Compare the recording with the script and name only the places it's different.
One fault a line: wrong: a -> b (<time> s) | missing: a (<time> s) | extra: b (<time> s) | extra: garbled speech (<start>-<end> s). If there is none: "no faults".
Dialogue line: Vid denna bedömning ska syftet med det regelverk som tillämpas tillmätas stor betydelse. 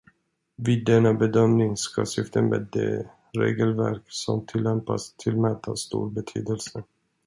no faults